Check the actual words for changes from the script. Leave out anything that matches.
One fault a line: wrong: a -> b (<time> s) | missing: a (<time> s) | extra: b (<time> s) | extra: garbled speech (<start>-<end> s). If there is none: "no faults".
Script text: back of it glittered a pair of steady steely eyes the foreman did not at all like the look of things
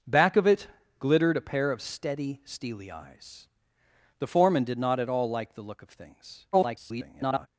extra: garbled speech (6.5-7.5 s)